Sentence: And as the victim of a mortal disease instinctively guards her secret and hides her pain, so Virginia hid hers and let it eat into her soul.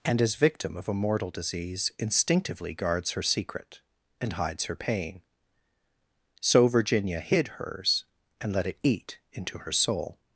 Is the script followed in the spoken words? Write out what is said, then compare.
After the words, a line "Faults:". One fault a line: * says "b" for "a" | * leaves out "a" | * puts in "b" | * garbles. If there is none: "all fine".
And as victim of a mortal disease instinctively guards her secret and hides her pain, so Virginia hid hers and let it eat into her soul.
Faults:
* leaves out "the"